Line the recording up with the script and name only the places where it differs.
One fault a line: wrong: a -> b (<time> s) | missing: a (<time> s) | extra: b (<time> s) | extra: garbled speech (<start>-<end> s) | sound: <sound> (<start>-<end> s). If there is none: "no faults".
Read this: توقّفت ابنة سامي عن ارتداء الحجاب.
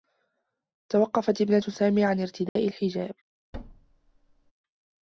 sound: dropout (2.5-2.6 s)
sound: thud (3.5-4.5 s)